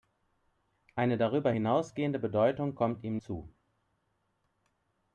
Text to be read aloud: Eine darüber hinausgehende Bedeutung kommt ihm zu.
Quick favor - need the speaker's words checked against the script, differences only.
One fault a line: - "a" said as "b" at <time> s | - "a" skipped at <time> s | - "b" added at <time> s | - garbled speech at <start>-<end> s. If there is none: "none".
none